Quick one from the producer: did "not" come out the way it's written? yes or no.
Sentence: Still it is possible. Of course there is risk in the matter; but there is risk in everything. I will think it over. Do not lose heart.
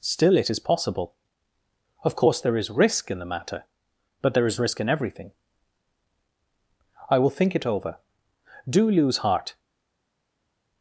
no